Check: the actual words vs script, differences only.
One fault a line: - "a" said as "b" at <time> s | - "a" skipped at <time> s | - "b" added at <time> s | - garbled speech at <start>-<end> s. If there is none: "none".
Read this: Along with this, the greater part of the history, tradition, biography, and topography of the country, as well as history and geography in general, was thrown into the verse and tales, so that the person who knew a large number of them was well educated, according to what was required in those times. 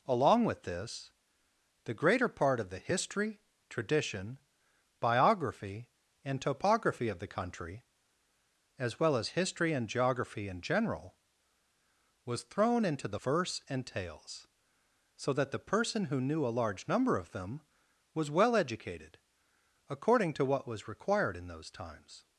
none